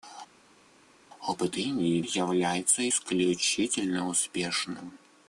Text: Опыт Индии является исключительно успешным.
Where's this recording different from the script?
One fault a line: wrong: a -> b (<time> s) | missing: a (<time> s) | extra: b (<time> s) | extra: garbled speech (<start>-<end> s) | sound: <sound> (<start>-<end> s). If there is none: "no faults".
no faults